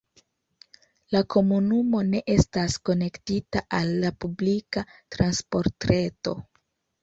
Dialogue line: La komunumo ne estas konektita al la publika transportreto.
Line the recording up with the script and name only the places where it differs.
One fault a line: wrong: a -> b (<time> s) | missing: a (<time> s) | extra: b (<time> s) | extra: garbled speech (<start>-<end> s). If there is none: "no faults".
no faults